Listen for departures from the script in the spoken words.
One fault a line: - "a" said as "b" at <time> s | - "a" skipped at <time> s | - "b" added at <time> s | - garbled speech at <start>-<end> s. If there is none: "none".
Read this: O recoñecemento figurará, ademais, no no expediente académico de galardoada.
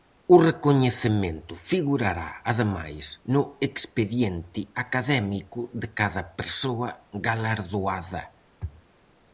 - "no" skipped at 3.4 s
- "cada persoa" added at 6.0 s